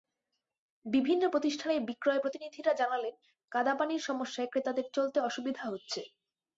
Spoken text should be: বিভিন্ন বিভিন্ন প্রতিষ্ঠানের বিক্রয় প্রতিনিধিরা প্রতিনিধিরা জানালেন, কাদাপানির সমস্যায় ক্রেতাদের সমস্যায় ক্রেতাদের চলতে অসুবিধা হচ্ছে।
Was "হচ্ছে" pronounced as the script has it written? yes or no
yes